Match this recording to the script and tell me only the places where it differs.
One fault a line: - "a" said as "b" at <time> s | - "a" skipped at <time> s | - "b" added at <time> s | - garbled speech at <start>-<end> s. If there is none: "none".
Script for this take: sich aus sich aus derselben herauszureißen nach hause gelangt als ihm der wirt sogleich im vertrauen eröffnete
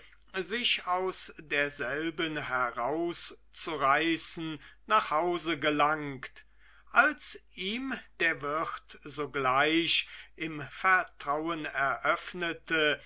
- "sich aus" skipped at 1.3 s